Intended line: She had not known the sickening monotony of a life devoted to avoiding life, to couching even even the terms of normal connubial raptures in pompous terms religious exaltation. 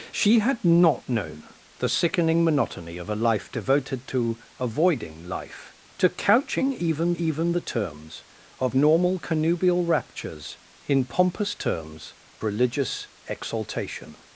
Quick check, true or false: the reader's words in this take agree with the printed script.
true